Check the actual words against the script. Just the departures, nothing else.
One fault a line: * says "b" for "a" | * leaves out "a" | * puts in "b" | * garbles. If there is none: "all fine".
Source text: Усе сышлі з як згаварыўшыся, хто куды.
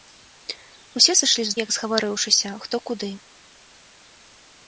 all fine